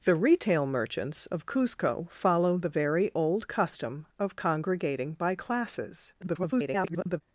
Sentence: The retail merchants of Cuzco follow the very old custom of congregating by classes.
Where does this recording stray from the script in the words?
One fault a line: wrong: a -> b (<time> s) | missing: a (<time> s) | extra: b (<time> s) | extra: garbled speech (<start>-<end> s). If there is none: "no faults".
extra: garbled speech (6.2-7.2 s)